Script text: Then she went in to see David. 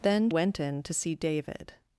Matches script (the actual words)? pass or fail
fail